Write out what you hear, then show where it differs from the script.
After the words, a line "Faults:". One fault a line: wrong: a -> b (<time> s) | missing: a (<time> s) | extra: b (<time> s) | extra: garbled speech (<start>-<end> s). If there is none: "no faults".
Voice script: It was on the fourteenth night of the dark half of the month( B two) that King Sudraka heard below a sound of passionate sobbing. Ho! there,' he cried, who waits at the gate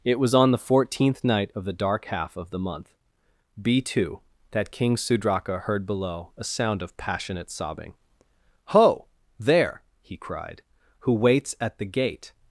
It was on the fourteenth night of the dark half of the month( B two) that King Sudraka heard below a sound of passionate sobbing. Ho! there,' he cried, who waits at the gate
Faults:
no faults